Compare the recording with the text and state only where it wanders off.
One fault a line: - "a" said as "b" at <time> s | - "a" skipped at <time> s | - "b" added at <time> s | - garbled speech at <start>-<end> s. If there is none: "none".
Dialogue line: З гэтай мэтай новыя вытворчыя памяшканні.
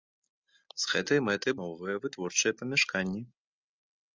none